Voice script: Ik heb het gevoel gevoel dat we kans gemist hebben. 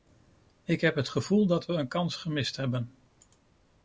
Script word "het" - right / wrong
right